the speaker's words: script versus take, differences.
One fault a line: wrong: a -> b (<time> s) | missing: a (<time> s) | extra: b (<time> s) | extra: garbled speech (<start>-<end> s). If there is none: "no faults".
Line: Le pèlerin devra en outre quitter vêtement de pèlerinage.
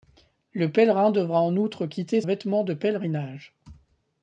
no faults